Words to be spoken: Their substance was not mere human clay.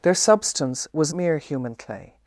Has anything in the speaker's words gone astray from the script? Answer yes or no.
yes